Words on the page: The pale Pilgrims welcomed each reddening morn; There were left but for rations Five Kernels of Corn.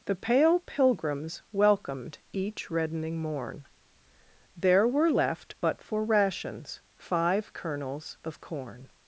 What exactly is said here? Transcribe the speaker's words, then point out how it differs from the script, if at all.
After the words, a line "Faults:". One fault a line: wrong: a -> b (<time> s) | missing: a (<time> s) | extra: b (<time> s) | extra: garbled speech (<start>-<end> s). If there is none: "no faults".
The pale Pilgrims welcomed each reddening morn; There were left but for rations Five Kernels of Corn.
Faults:
no faults